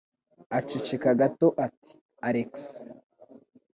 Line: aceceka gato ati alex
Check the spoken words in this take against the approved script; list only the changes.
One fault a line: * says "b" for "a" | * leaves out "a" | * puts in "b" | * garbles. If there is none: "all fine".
all fine